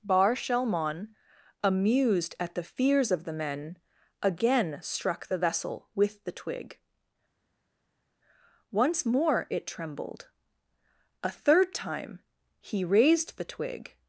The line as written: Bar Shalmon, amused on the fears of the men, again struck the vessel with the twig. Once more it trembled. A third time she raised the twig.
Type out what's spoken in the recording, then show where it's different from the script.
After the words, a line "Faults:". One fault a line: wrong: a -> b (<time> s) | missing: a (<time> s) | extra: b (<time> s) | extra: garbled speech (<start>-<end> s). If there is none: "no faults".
Bar Shalmon, amused at the fears of the men, again struck the vessel with the twig. Once more it trembled. A third time he raised the twig.
Faults:
wrong: on -> at (2.4 s)
wrong: she -> he (12.6 s)